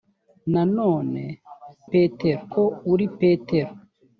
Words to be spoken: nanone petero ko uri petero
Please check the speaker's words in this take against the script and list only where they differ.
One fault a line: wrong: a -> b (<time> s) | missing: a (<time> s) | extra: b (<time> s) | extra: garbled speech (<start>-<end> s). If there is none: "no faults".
no faults